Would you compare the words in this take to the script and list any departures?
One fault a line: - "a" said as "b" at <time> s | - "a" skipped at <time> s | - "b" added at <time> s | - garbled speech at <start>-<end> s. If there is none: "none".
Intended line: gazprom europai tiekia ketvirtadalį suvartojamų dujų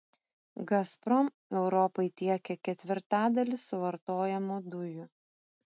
none